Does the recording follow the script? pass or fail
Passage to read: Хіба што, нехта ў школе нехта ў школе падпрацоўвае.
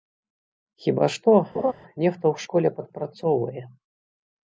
fail